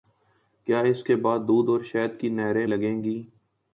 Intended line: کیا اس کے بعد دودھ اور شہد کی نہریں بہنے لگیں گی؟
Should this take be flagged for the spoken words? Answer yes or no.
yes